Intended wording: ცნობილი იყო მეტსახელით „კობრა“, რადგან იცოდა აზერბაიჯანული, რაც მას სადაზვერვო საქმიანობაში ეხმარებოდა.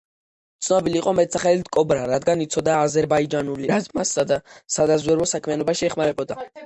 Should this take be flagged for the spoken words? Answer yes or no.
no